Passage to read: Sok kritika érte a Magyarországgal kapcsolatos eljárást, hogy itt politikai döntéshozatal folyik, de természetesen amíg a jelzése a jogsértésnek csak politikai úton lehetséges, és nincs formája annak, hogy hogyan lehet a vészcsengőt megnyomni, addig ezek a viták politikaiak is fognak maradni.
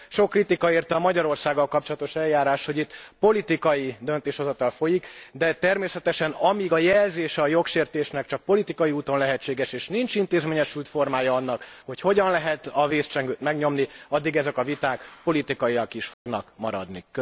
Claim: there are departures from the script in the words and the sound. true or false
true